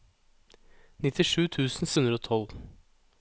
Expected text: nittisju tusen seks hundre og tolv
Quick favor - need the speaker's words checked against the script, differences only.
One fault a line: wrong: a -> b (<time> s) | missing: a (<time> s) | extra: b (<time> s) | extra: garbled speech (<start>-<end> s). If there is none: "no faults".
missing: seks (1.9 s)